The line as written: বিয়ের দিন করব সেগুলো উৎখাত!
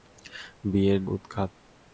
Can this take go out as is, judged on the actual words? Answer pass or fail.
fail